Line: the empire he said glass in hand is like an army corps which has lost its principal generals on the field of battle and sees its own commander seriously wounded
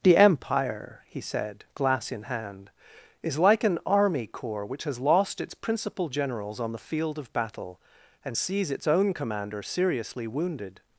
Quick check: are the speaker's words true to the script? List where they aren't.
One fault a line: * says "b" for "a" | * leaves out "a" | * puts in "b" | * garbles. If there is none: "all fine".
all fine